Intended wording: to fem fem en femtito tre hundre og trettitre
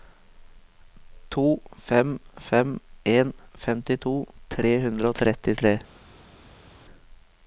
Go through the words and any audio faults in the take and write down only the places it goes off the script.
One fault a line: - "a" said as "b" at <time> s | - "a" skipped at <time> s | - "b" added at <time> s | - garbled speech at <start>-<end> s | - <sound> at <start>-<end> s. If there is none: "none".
none